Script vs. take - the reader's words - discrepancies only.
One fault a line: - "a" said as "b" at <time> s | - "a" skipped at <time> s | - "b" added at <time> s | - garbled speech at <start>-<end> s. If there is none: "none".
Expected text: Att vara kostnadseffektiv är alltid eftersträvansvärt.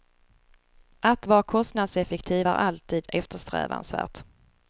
none